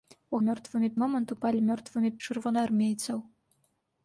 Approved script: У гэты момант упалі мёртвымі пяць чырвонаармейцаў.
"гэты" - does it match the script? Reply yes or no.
no